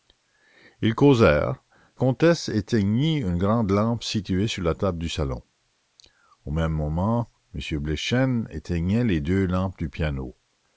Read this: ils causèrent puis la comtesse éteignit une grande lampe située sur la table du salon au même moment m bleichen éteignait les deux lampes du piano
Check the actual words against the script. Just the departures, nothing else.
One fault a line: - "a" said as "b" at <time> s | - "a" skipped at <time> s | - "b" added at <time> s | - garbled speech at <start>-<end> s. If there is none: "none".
- "puis la" skipped at 1.6 s